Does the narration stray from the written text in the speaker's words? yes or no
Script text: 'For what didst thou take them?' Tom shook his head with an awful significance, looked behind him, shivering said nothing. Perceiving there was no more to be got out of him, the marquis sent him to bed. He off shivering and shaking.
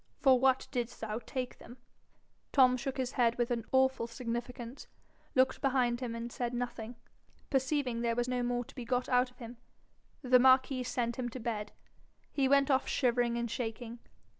yes